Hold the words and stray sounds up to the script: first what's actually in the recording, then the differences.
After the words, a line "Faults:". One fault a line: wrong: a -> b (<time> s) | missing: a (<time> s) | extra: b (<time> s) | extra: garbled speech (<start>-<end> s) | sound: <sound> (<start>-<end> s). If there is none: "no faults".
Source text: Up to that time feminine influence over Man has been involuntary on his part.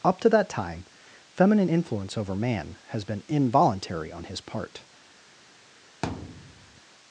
Up to that time feminine influence over Man has been involuntary on his part.
Faults:
sound: thud (6.0-6.8 s)